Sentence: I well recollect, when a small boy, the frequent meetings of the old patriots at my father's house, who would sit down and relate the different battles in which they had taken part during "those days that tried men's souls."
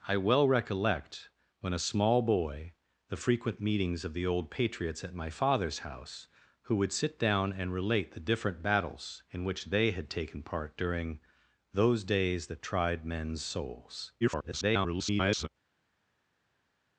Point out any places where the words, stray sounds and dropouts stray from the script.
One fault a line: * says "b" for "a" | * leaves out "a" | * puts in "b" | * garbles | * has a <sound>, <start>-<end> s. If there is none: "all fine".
* garbles